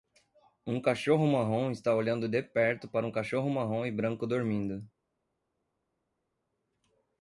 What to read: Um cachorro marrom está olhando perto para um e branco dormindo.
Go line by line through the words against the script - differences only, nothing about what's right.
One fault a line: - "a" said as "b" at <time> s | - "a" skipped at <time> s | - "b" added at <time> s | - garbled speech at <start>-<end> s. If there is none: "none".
- "de" added at 2.3 s
- "cachorro marrom" added at 3.1 s